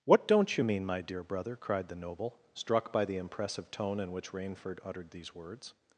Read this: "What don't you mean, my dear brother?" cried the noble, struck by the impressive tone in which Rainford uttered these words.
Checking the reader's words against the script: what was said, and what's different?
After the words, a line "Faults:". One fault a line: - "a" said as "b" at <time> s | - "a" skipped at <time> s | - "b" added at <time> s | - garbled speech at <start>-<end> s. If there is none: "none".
"What don't you mean, my dear brother?" cried the noble, struck by the impressive tone in which Rainford uttered these words.
Faults:
none